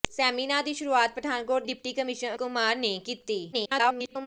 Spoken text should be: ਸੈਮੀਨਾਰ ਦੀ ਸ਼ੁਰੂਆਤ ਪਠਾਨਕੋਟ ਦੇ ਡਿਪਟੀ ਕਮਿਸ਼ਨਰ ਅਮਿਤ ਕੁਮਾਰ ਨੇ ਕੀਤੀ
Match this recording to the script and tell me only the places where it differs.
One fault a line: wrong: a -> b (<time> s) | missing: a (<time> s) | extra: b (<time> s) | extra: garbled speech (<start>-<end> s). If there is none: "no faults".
missing: ਦੇ (1.6 s)
missing: ਅਮਿਤ (2.3 s)
extra: garbled speech (3.5-4.3 s)